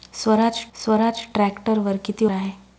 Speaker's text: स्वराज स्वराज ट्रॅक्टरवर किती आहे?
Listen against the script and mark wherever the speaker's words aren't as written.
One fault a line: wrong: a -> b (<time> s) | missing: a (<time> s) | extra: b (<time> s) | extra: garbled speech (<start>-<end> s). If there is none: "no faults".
no faults